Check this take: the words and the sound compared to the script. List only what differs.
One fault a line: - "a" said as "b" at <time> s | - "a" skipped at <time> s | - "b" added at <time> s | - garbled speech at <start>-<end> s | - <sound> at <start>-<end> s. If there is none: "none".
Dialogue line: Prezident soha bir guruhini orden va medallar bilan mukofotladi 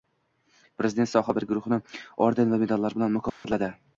- dropout at 3.3-3.4 s